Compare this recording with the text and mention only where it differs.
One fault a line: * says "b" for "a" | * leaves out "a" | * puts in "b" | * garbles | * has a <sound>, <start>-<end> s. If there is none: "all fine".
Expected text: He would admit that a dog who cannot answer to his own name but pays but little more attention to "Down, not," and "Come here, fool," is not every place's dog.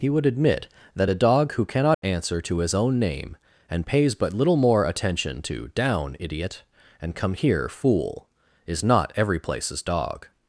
* has a dropout, 1.9-2.0 s
* says "and" for "but"
* says "idiot" for "not"